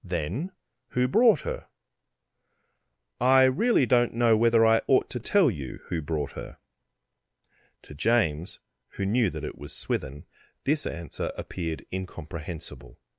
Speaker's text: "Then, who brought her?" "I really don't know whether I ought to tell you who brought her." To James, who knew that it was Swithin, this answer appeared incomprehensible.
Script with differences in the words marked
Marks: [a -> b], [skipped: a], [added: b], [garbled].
"Then, who brought her?" "I really don't know whether I ought to tell you who brought her." To James, who knew that it was Swithin, this answer appeared incomprehensible.